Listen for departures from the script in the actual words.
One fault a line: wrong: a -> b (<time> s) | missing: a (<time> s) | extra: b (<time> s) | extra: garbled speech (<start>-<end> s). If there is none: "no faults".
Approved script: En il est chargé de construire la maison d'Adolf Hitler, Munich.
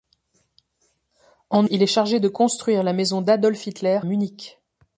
no faults